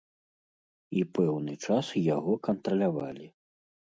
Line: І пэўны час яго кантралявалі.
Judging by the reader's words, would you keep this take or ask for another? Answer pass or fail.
pass